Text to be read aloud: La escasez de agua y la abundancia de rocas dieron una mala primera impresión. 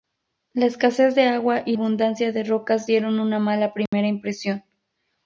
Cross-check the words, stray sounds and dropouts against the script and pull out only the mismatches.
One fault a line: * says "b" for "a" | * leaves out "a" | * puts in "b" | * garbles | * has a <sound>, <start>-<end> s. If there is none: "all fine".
* leaves out "la"
* has a dropout, 3.9-3.9 s